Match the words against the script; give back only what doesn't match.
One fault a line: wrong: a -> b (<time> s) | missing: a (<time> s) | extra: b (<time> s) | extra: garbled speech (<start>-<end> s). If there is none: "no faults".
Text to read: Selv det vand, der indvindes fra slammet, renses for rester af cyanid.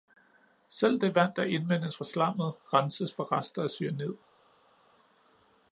no faults